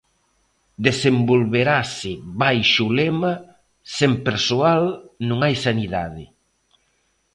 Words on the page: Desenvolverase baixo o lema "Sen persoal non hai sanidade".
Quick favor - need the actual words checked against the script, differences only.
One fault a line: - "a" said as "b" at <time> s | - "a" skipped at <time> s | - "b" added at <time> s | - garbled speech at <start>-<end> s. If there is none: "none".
none